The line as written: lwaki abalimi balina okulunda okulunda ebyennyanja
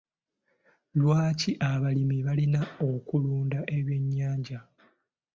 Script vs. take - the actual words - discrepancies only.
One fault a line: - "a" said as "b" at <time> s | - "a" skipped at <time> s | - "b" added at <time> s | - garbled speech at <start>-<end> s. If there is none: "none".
- "okulunda" skipped at 3.6 s